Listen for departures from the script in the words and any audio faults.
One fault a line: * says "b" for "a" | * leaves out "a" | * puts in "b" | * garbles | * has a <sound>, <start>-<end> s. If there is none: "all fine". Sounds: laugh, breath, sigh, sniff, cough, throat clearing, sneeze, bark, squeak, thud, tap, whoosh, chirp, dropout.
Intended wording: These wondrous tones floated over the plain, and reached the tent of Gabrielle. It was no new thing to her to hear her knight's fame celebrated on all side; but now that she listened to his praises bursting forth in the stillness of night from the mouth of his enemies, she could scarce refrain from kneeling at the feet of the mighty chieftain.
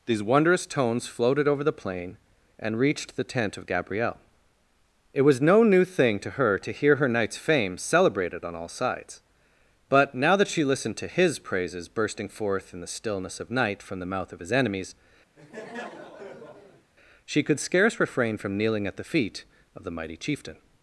* says "sides" for "side"
* has a laugh, 15.4-16.9 s